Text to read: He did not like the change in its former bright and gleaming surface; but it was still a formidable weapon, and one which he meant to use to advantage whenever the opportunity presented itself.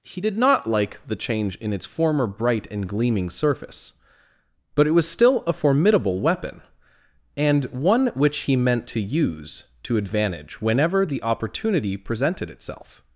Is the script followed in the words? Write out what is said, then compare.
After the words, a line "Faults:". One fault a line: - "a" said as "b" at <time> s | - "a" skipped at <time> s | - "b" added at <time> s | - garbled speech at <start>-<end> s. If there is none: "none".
He did not like the change in its former bright and gleaming surface; but it was still a formidable weapon, and one which he meant to use to advantage whenever the opportunity presented itself.
Faults:
none